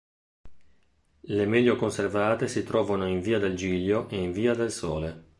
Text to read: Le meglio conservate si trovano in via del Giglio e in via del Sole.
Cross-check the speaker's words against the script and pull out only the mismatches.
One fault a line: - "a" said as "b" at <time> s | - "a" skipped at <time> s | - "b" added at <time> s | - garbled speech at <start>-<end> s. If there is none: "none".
none